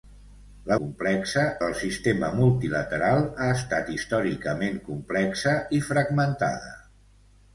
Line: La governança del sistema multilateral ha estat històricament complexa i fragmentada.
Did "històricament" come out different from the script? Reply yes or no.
no